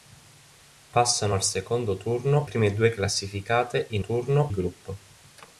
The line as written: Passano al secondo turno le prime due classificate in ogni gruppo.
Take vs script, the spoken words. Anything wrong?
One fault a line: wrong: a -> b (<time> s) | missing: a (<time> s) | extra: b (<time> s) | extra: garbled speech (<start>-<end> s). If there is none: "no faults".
missing: le (2.5 s)
wrong: ogni -> turno (4.0 s)